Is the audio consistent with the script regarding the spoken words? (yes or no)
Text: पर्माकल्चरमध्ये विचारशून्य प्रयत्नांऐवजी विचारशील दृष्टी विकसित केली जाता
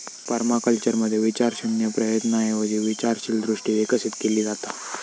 yes